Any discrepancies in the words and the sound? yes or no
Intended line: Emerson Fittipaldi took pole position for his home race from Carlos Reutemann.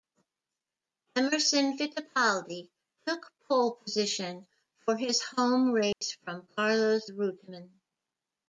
yes